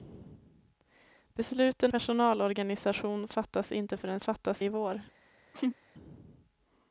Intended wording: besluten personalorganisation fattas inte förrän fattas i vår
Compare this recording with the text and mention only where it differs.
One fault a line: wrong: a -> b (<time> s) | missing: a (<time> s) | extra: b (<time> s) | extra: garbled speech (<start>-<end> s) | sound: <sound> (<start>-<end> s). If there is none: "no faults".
sound: laugh (5.5-5.8 s)